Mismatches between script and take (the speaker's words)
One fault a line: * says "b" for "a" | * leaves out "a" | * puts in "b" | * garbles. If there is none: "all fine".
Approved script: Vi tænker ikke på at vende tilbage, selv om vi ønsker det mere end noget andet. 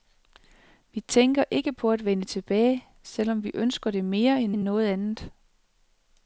* puts in "end"